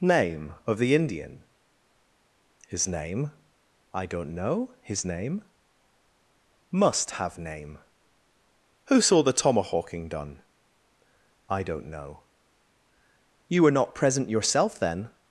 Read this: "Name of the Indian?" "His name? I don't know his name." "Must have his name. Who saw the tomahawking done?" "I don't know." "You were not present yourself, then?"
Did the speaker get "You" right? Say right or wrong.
right